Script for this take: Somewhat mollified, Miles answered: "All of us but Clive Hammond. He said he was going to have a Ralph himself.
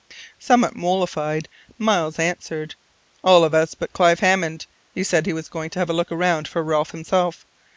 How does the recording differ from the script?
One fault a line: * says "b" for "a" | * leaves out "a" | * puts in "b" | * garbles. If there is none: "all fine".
* puts in "look around for"